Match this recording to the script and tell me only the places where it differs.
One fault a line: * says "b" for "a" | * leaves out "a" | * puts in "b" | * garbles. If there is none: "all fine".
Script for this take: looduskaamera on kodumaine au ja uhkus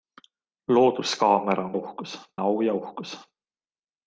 * says "uhkus" for "kodumaine"